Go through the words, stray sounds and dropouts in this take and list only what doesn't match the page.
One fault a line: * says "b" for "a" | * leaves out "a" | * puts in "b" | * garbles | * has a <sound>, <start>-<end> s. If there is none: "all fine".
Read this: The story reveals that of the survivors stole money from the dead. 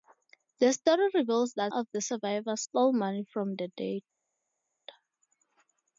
all fine